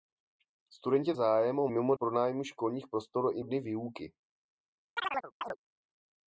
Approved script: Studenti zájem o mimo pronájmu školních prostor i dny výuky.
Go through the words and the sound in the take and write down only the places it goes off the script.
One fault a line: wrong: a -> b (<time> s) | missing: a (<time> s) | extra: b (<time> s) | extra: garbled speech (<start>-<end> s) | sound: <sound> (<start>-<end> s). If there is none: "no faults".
sound: chirp (5.0-5.6 s)